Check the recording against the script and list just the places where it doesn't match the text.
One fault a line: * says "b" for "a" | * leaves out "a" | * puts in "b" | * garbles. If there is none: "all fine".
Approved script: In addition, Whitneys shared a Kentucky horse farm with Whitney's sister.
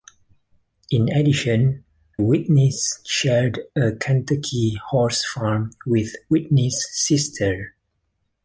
all fine